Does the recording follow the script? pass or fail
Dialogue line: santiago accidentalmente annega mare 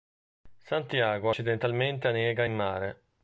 fail